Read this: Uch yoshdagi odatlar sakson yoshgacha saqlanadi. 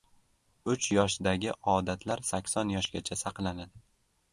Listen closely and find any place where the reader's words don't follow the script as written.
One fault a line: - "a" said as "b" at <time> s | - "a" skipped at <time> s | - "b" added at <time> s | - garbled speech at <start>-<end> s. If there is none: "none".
none